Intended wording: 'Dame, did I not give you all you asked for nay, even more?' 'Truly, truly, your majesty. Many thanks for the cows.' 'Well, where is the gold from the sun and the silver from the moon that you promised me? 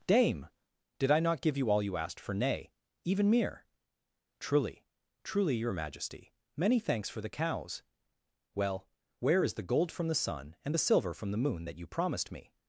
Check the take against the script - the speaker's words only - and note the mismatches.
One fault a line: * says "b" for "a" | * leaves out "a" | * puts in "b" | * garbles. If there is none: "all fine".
* says "mere" for "more"